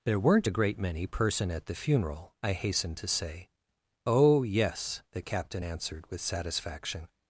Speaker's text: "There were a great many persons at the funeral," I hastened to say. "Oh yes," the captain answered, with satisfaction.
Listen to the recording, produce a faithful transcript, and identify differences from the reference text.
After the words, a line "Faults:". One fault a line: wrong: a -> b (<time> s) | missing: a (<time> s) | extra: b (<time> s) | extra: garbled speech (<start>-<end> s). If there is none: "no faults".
"There weren't a great many person at the funeral," I hastened to say. "Oh yes," the captain answered, with satisfaction.
Faults:
wrong: were -> weren't (0.2 s)
wrong: persons -> person (1.1 s)